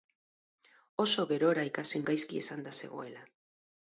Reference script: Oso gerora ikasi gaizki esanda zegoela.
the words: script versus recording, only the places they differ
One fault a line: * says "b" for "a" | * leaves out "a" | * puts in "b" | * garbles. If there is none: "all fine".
all fine